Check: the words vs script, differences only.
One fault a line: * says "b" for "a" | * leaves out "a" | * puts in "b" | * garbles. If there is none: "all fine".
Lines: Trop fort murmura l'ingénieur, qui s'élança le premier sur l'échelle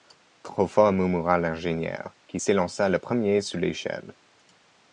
all fine